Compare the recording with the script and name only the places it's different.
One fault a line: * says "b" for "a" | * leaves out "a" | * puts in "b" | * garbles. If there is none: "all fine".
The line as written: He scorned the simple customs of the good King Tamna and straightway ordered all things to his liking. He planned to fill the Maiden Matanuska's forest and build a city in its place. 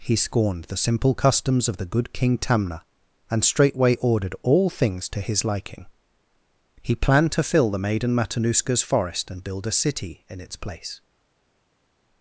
all fine